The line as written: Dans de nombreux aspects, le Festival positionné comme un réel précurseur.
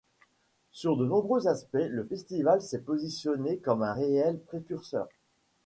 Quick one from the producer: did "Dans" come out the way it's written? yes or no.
no